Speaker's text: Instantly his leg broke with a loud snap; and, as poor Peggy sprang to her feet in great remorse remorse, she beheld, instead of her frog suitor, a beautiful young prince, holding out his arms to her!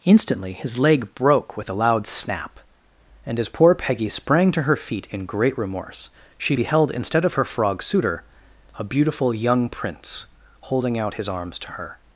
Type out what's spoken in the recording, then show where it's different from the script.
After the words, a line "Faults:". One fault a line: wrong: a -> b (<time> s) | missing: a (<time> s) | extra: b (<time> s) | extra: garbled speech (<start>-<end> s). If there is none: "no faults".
Instantly his leg broke with a loud snap; and, as poor Peggy sprang to her feet in great remorse, she beheld, instead of her frog suitor, a beautiful young prince, holding out his arms to her!
Faults:
missing: remorse (6.1 s)